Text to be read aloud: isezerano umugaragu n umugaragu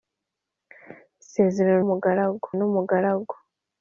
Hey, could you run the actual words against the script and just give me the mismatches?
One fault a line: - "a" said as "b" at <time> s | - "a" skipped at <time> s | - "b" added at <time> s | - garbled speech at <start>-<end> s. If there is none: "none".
none